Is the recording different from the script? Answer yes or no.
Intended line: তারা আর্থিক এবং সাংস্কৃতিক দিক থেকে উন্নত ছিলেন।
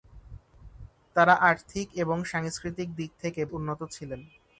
no